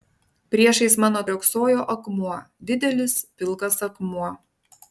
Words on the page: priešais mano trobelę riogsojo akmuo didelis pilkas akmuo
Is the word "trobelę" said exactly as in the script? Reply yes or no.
no